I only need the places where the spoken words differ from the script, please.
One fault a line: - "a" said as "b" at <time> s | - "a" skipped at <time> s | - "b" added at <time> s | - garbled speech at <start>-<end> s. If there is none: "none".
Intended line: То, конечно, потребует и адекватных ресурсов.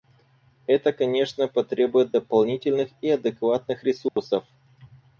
- "То" said as "Это" at 0.7 s
- "дополнительных" added at 2.1 s